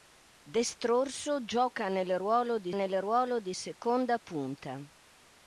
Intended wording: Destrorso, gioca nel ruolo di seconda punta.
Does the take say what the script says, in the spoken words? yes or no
no